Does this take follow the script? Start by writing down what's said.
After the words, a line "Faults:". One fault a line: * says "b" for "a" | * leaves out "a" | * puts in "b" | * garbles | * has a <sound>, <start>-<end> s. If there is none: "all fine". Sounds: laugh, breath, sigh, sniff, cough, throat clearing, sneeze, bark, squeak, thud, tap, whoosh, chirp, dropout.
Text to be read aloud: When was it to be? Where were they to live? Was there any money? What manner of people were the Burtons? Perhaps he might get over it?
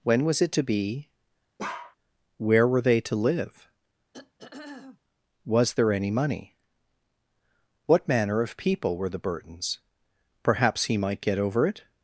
When was it to be? Where were they to live? Was there any money? What manner of people were the Burtons? Perhaps he might get over it?
Faults:
* has a bark, 1.6-2.0 s
* has a throat clearing, 4.1-5.0 s